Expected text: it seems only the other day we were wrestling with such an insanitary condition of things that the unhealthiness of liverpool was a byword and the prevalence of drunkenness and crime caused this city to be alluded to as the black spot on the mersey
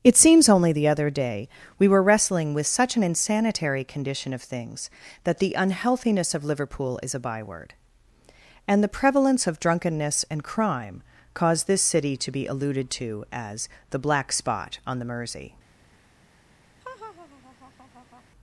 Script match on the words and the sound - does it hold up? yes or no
no